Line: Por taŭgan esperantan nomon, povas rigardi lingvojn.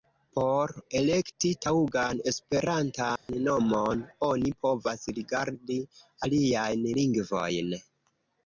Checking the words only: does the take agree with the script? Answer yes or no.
no